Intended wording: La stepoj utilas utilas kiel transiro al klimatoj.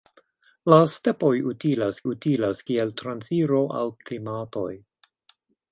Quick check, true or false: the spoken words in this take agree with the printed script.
true